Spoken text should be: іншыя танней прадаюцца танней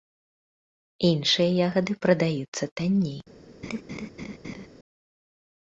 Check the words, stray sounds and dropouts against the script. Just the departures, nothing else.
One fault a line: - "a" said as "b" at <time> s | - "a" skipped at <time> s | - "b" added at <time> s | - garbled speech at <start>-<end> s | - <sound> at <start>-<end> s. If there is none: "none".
- "танней" said as "ягады" at 1.7 s
- laugh at 3.6-4.7 s